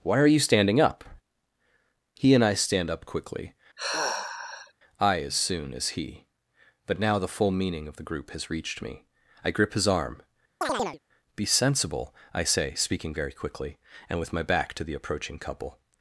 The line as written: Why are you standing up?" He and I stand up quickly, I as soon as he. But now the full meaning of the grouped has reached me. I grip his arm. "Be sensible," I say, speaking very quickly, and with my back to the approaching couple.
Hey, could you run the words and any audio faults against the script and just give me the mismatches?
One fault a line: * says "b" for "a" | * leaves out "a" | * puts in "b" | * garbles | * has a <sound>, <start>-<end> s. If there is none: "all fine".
* has a sigh, 3.8-4.7 s
* says "group" for "grouped"
* has a chirp, 10.6-11.0 s